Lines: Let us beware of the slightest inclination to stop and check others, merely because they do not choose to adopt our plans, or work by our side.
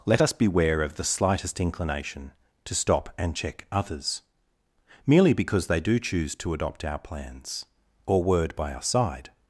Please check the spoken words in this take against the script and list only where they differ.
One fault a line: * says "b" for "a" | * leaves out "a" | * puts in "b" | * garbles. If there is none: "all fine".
* leaves out "not"
* says "word" for "work"